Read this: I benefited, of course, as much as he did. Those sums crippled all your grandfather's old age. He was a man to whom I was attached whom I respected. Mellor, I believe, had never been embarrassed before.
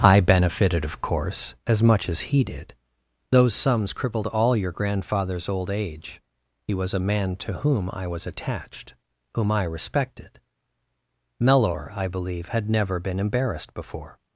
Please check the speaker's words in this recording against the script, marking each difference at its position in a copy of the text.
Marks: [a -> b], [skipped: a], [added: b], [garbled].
I benefited, of course, as much as he did. Those sums crippled all your grandfather's old age. He was a man to whom I was attached whom I respected. Mellor, I believe, had never been embarrassed before.